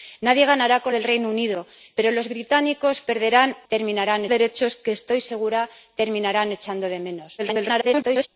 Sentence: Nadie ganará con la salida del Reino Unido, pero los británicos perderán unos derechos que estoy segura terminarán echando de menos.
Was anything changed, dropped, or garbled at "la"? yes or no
yes